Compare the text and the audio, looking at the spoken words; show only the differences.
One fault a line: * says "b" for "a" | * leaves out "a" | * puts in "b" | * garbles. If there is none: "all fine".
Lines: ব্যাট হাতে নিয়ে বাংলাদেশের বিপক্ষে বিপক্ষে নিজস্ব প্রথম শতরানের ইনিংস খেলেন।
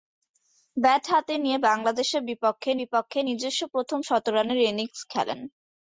all fine